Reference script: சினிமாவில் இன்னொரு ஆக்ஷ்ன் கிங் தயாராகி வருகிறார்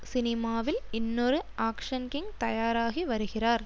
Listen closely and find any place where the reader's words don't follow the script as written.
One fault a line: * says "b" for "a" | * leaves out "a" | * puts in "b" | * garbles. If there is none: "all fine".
all fine